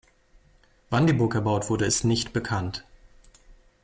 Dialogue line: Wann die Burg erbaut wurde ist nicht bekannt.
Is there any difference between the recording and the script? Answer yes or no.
no